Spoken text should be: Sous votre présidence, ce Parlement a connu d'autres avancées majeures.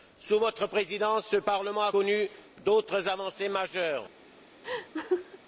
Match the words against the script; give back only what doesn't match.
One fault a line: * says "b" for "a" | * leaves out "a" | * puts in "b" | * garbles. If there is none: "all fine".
all fine